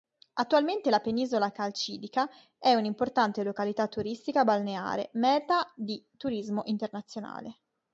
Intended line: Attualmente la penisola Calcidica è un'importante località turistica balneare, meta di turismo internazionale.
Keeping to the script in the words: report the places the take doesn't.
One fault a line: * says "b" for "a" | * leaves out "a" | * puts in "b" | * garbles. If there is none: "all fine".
all fine